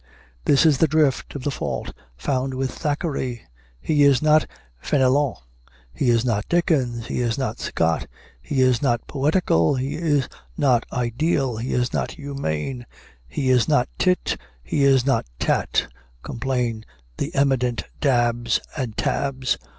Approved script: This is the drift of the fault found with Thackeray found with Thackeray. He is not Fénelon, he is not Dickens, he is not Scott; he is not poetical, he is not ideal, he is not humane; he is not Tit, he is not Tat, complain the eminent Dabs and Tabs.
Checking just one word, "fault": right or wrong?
right